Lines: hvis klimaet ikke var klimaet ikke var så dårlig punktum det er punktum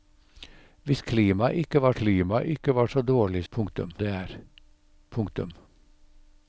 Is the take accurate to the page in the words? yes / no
yes